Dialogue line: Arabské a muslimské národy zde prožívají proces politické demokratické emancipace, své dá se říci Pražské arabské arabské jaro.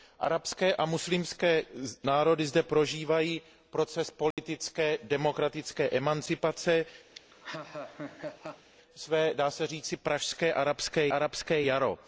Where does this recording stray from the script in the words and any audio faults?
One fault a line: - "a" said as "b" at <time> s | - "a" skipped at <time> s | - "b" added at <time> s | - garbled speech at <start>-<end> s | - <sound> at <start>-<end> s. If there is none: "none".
- dropout at 4.3-4.4 s
- laugh at 7.1-8.7 s